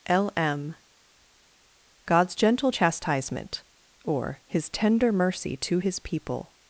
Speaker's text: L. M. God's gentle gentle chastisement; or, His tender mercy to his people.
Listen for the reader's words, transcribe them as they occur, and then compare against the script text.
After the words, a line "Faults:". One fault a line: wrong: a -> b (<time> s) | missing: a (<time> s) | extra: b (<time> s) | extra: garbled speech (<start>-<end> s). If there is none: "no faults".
L. M. God's gentle chastisement; or, His tender mercy to his people.
Faults:
missing: gentle (2.7 s)